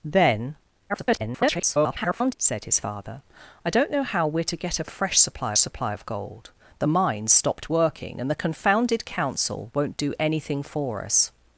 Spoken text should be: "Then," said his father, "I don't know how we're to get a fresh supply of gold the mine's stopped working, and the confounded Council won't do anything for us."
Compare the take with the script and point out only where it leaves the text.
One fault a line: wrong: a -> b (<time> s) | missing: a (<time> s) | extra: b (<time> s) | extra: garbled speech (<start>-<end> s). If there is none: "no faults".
extra: garbled speech (0.9-2.3 s)
extra: supply (5.6 s)